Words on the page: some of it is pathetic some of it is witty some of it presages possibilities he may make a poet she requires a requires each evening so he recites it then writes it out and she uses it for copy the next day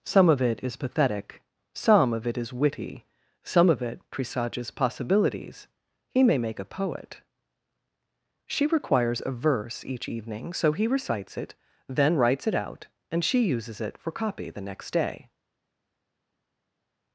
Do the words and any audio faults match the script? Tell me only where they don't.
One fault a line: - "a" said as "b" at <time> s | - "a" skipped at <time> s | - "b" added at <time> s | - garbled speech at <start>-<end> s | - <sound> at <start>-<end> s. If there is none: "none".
- "requires" said as "verse" at 9.3 s